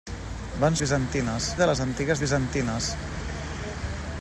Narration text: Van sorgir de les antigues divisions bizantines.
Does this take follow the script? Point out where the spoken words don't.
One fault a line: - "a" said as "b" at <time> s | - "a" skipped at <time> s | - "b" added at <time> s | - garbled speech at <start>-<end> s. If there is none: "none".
- "sorgir" said as "bizantines" at 0.8 s
- "divisions" skipped at 2.2 s